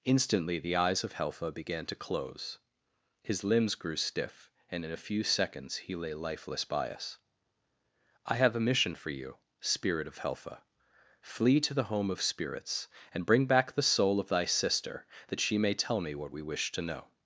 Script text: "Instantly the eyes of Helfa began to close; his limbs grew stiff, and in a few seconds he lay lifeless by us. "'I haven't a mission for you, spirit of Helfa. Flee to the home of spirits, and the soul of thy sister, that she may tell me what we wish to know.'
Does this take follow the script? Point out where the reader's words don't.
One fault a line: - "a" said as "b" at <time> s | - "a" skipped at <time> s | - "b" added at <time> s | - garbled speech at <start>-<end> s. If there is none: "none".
- "haven't" said as "have" at 8.4 s
- "bring back" added at 13.3 s